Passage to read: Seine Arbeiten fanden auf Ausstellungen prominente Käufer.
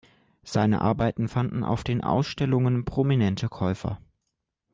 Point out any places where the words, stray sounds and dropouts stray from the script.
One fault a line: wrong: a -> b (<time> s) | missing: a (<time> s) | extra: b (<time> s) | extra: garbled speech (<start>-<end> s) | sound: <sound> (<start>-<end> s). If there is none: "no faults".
extra: den (1.8 s)